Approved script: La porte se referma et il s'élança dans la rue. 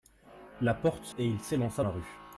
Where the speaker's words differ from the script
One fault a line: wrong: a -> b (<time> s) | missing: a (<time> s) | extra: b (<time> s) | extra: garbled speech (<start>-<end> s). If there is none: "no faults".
missing: referma (1.1 s)
missing: dans (1.8 s)